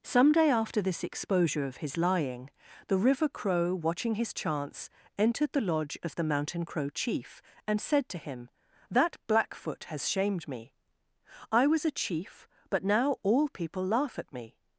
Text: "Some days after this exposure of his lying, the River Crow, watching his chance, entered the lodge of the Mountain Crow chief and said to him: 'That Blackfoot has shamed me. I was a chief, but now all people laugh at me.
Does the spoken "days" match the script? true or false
false